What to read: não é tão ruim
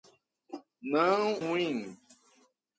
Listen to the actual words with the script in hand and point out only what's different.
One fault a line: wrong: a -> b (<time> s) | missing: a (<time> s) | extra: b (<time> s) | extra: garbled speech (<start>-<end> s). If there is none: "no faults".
missing: é tão (1.3 s)